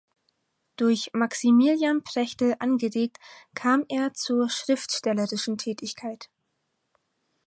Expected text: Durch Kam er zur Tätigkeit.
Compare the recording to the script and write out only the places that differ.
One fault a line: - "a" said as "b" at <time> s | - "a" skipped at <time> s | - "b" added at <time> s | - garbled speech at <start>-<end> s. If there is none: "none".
- "Maximilian Prechtl angeregt" added at 1.1 s
- "schriftstellerischen" added at 4.5 s